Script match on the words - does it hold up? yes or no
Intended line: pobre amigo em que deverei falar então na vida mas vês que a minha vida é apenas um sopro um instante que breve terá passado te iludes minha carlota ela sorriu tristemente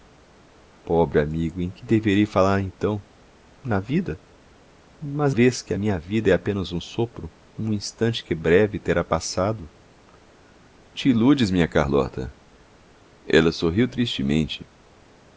yes